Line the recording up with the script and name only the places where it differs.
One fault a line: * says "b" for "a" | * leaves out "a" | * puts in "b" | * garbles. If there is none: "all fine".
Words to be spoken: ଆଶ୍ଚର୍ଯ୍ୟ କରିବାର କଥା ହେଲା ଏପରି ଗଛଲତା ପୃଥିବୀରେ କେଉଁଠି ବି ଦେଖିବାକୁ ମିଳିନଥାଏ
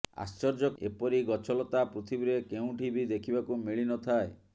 * leaves out "କରିବାର କଥା ହେଲା"